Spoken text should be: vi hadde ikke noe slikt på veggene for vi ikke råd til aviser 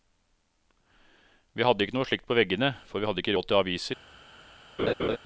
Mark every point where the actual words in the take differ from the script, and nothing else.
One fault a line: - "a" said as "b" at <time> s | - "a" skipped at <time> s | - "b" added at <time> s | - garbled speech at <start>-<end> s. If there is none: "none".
- "hadde" added at 3.1 s